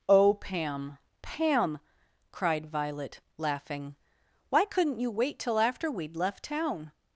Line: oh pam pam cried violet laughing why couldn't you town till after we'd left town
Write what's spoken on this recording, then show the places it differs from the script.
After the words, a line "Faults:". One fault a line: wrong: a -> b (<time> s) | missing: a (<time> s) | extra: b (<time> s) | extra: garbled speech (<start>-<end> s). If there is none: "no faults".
oh pam pam cried violet laughing why couldn't you wait till after we'd left town
Faults:
wrong: town -> wait (5.1 s)